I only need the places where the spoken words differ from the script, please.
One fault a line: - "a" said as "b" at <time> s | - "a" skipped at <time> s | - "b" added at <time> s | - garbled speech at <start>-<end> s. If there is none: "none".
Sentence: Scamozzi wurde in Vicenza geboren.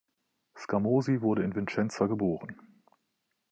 none